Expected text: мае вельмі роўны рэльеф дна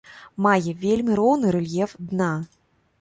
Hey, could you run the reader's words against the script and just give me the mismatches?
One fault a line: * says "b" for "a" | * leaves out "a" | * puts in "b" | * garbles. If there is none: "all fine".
all fine